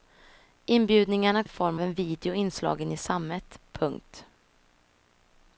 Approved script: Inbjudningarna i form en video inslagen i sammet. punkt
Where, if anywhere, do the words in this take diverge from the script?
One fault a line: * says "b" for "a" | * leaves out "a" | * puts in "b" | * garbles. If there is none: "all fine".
all fine